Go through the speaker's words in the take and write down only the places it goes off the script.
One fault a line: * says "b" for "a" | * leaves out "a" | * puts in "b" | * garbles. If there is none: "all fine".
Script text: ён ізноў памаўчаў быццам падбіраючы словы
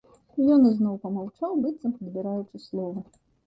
all fine